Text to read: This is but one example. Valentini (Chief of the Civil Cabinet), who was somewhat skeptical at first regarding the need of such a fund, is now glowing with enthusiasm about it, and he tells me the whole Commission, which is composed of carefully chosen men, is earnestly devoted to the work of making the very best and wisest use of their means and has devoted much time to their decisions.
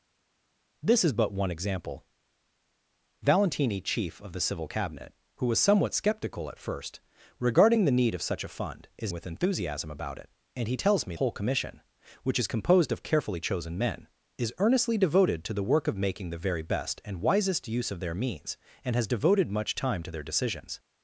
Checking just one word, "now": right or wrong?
wrong